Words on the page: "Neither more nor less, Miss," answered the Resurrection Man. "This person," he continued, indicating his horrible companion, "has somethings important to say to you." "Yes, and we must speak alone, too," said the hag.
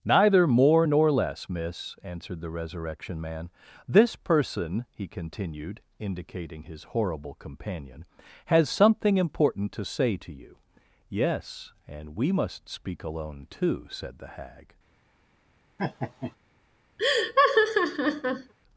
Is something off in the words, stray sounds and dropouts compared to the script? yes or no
yes